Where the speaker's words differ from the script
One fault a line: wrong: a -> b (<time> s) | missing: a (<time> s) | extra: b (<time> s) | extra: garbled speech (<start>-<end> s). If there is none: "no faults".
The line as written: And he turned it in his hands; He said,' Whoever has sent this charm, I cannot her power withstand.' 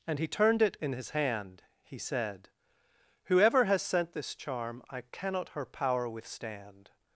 wrong: hands -> hand (1.1 s)